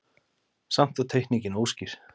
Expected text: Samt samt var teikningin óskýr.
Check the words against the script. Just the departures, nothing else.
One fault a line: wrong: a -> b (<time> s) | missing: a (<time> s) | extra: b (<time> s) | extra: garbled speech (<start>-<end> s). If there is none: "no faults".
missing: samt (1.0 s)